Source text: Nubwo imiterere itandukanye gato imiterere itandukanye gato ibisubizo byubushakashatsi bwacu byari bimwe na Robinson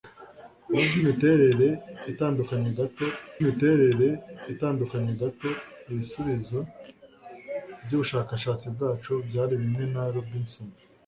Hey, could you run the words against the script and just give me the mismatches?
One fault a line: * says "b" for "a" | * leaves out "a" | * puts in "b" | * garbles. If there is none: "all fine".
all fine